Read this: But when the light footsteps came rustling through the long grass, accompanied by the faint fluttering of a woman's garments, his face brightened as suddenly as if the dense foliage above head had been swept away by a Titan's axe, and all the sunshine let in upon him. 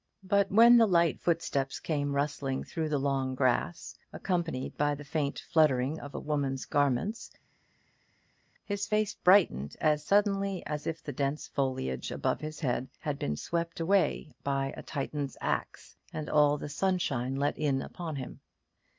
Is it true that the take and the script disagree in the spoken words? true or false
true